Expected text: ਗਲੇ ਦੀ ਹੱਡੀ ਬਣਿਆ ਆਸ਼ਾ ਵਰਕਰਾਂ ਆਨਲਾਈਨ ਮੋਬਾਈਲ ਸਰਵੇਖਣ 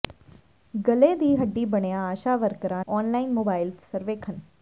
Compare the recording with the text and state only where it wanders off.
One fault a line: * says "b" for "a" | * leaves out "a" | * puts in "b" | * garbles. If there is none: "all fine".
all fine